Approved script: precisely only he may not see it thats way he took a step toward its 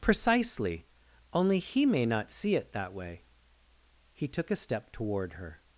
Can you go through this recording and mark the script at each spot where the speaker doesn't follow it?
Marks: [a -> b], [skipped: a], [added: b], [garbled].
precisely only he may not see it [thats -> that] way he took a step toward [its -> her]